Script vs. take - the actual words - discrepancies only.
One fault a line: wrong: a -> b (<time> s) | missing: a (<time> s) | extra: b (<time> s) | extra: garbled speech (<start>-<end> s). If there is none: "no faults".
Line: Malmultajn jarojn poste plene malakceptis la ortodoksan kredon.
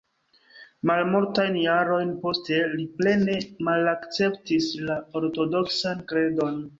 extra: li (2.8 s)